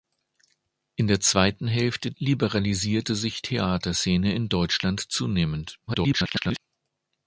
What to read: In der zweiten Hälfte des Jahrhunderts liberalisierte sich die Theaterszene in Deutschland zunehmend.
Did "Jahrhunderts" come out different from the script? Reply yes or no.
yes